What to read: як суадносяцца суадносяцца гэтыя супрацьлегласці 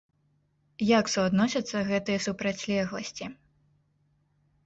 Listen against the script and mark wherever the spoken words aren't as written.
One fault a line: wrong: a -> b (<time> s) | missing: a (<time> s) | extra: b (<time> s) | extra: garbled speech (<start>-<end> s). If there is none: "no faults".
missing: суадносяцца (1.8 s)